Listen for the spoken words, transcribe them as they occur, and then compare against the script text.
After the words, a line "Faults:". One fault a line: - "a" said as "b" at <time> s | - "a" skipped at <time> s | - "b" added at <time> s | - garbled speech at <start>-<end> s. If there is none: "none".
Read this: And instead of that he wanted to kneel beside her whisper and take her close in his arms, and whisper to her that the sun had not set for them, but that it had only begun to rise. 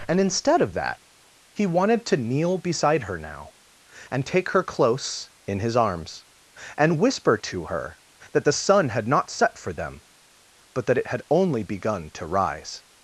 And instead of that he wanted to kneel beside her now and take her close in his arms, and whisper to her that the sun had not set for them, but that it had only begun to rise.
Faults:
- "whisper" said as "now" at 3.2 s